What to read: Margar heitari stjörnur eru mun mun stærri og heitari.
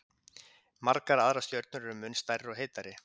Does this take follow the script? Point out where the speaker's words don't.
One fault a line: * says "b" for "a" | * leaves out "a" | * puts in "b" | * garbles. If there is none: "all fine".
* says "aðrar" for "heitari"
* leaves out "mun"